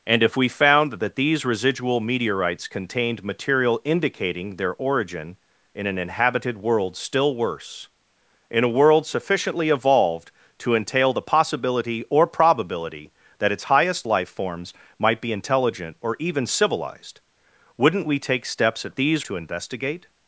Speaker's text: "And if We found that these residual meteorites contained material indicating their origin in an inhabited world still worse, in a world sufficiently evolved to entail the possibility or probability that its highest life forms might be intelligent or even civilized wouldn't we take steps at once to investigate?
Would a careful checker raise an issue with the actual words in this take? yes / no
yes